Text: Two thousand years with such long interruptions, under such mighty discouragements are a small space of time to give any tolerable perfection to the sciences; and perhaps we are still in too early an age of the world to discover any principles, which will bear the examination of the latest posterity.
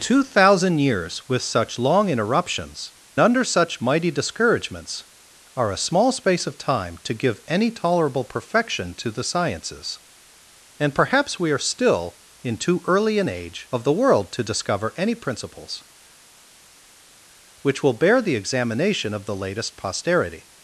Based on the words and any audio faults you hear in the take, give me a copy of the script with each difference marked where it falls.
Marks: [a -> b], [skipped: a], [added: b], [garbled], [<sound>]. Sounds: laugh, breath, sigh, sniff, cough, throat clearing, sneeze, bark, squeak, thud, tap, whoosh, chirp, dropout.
Two thousand years with such long interruptions, under such mighty discouragements are a small space of time to give any tolerable perfection to the sciences; and perhaps we are still in too early an age of the world to discover any principles, which will bear the examination of the latest posterity.